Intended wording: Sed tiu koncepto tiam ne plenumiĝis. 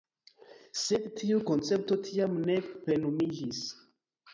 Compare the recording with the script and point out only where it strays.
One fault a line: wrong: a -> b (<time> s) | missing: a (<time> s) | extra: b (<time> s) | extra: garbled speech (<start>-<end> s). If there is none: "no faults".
no faults